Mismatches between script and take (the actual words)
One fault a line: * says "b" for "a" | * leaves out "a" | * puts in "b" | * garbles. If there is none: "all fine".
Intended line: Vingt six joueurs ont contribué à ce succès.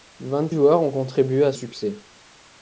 * leaves out "six"
* leaves out "ce"